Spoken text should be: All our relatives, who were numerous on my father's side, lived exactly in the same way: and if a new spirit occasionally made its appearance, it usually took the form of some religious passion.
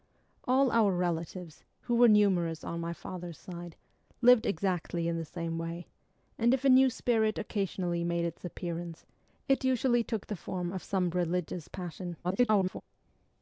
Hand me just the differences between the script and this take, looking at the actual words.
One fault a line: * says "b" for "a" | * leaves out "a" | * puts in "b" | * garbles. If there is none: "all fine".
* garbles